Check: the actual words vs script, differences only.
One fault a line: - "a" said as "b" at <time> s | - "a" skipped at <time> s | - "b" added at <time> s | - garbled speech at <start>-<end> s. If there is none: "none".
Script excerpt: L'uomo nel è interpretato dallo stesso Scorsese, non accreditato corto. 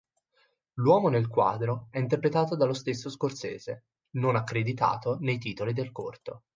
- "quadro" added at 1.3 s
- "nei titoli del" added at 5.2 s